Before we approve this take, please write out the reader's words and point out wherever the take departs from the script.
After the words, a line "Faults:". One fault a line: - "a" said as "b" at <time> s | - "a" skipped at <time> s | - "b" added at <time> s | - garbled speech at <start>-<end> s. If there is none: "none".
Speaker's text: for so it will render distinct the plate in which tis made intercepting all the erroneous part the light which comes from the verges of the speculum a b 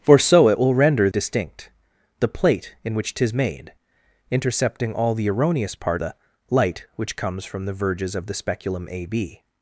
for so it will render distinct the plate in which tis made intercepting all the erroneous part the light which comes from the verges of the speculum a b
Faults:
none